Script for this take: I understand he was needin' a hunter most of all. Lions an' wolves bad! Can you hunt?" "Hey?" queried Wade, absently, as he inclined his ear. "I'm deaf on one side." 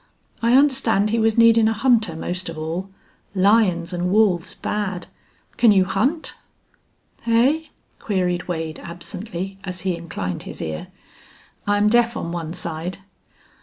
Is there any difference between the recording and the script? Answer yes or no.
no